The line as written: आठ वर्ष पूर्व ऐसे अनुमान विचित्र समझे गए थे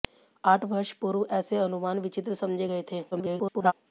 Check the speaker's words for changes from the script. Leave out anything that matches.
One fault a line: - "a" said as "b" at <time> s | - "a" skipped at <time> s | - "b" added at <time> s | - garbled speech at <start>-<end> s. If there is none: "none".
- garbled speech at 3.1-3.7 s